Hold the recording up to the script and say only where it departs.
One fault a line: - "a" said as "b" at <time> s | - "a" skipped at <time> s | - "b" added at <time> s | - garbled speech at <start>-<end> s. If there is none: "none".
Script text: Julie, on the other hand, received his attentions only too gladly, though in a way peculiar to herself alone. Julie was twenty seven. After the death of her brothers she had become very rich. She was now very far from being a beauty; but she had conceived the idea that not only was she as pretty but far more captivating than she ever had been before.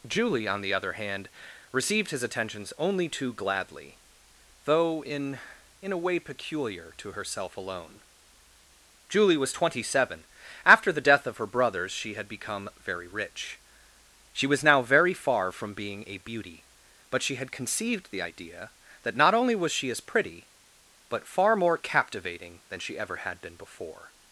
- "in" added at 5.8 s